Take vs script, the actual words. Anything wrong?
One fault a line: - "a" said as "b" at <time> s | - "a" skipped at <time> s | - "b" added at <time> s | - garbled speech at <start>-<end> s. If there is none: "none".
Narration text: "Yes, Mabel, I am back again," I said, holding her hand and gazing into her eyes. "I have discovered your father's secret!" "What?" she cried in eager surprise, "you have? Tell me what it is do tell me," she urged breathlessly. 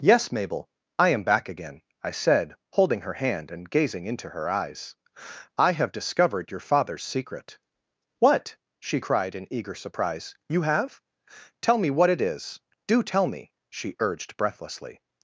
none